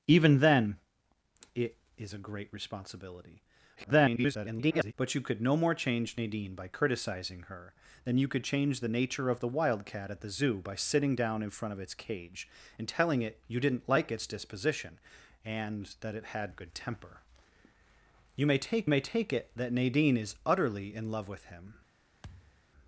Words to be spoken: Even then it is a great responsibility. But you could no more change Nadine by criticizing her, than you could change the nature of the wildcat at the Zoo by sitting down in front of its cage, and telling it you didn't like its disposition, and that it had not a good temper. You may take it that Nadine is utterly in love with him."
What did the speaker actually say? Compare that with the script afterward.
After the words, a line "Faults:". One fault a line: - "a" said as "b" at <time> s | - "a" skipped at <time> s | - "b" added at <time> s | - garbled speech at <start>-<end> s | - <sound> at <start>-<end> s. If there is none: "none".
Even then it is a great responsibility. [garbled] But you could no more change Nadine by criticizing her, than you could change the nature of the wildcat at the Zoo by sitting down in front of its cage, and telling it you didn't like its disposition, and that it had a good temper. You may take may take it that Nadine is utterly in love with him."
Faults:
- garbled speech at 3.8-4.9 s
- "not" skipped at 16.5 s
- "may take" added at 18.9 s
- thud at 22.2-22.7 s